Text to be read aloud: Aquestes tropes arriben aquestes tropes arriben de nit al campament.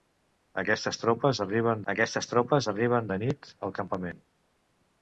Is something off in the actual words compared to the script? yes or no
no